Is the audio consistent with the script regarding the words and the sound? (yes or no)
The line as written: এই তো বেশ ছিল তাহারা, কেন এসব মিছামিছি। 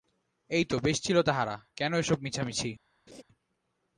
no